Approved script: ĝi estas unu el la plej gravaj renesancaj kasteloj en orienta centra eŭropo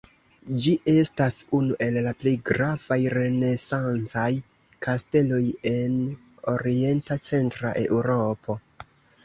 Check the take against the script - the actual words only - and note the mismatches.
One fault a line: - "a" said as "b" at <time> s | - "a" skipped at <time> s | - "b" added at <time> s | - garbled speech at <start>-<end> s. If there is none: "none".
none